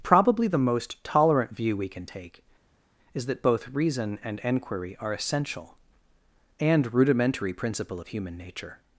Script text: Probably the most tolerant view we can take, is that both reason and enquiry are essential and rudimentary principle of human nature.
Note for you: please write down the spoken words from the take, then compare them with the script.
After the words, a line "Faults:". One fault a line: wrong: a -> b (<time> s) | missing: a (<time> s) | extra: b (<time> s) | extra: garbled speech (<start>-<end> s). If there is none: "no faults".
Probably the most tolerant view we can take, is that both reason and enquiry are essential and rudimentary principle of human nature.
Faults:
no faults